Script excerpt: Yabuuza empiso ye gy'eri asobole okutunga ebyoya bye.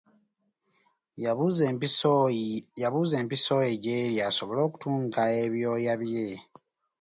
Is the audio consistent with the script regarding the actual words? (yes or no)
yes